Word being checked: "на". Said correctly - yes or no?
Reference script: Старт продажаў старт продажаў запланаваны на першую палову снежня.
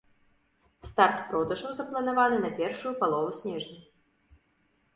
yes